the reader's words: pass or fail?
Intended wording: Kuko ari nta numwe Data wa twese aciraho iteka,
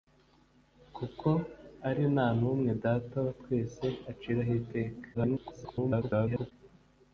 fail